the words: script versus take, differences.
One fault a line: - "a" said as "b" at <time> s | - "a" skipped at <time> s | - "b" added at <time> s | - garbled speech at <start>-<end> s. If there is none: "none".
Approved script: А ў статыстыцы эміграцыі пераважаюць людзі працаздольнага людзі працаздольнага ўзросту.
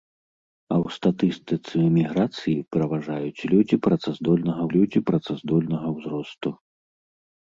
none